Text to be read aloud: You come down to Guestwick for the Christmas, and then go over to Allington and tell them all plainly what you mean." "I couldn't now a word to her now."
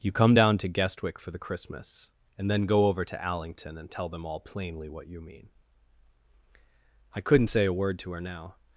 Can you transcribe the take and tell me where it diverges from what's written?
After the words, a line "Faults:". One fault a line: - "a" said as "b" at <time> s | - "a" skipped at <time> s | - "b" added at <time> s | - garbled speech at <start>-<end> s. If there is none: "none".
You come down to Guestwick for the Christmas, and then go over to Allington and tell them all plainly what you mean." "I couldn't say a word to her now."
Faults:
- "now" said as "say" at 7.5 s